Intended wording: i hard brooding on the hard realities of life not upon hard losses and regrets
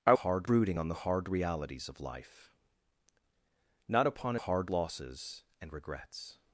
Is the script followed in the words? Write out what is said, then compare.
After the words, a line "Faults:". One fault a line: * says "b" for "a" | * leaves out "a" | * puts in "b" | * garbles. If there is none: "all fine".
i hard brooding on the hard realities of life not upon hard losses and regrets
Faults:
all fine